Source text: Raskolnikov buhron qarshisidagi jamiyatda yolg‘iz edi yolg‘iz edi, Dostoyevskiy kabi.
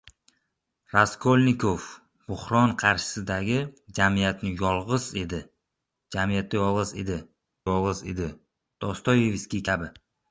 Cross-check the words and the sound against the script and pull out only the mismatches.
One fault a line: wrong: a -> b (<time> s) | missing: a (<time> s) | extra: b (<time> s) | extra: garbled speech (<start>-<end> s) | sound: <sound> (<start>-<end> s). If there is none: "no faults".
no faults